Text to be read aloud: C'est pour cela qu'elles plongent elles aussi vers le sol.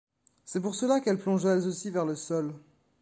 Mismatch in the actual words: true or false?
false